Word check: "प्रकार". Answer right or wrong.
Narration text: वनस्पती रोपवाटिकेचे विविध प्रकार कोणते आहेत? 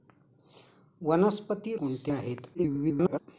wrong